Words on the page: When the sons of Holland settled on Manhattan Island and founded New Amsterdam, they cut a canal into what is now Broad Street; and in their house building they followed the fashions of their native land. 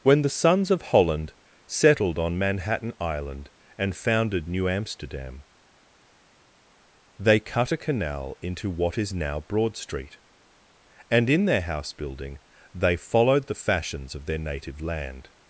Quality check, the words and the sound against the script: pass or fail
pass